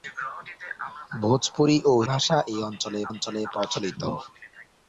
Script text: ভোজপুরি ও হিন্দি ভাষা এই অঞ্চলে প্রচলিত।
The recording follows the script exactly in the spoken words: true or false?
false